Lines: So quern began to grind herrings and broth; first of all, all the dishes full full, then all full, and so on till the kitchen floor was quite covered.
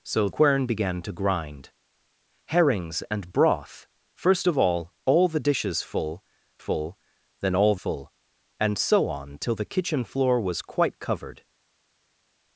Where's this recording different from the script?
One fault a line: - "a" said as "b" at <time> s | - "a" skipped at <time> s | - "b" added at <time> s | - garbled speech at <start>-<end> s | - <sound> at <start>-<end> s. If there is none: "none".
none